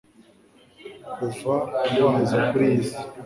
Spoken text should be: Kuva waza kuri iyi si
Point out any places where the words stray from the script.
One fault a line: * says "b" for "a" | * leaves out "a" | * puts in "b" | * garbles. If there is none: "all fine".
all fine